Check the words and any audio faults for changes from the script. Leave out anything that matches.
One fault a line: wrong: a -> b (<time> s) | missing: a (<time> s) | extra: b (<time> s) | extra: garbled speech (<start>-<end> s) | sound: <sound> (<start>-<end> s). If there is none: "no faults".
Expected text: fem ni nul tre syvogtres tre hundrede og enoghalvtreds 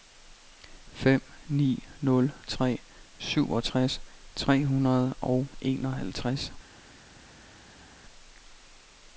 no faults